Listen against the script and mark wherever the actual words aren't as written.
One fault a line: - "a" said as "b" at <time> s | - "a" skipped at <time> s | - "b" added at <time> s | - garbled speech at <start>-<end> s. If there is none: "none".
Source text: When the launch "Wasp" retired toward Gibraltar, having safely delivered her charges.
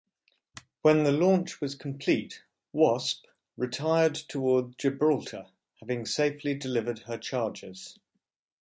- "was complete" added at 1.6 s